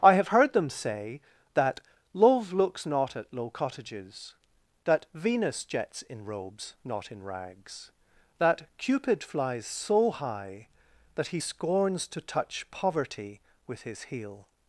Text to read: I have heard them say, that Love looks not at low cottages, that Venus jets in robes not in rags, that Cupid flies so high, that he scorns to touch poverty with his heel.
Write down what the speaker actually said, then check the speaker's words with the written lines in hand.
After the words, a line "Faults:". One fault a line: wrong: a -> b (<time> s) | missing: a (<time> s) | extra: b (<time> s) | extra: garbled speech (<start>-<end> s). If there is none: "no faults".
I have heard them say, that Love looks not at low cottages, that Venus jets in robes not in rags, that Cupid flies so high, that he scorns to touch poverty with his heel.
Faults:
no faults